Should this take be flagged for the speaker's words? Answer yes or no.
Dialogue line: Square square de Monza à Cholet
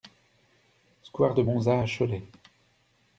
yes